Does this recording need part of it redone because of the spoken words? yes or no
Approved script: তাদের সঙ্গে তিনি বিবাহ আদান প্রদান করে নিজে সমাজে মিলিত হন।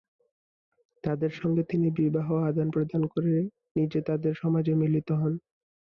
yes